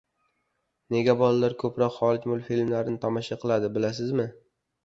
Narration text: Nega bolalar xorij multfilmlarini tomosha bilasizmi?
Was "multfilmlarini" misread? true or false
false